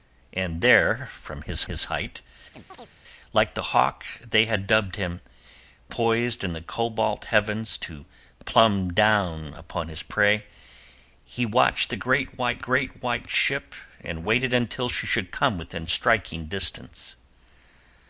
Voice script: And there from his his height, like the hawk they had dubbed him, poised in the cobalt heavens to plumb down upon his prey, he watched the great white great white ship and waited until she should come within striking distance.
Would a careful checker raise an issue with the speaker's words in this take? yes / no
no